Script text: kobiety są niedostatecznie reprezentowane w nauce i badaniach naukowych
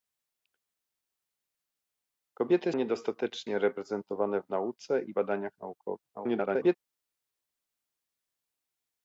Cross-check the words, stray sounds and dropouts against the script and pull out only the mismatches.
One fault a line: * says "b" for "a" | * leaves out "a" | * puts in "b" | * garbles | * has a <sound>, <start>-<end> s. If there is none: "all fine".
* leaves out "są"
* garbles